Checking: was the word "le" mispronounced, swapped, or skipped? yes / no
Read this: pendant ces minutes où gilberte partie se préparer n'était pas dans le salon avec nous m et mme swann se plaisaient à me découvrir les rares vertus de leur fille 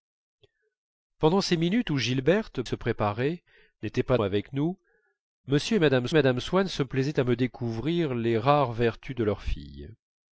yes